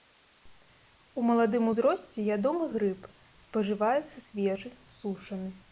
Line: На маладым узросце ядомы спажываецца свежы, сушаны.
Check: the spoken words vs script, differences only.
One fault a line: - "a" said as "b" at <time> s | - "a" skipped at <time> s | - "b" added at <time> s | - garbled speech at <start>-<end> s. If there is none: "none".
- "На" said as "У" at 1.1 s
- "грыб" added at 2.8 s